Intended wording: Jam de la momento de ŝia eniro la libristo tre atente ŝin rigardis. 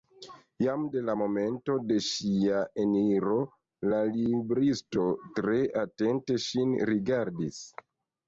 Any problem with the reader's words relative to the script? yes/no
no